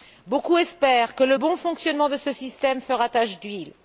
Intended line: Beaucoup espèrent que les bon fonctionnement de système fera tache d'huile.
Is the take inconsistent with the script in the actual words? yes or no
yes